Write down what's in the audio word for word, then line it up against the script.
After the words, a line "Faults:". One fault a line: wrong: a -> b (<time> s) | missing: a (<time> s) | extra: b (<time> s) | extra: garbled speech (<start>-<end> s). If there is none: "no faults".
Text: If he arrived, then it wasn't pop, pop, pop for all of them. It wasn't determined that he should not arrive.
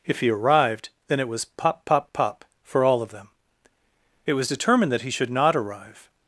If he arrived, then it was pop, pop, pop for all of them. It was determined that he should not arrive.
Faults:
wrong: wasn't -> was (1.3 s)
wrong: wasn't -> was (4.3 s)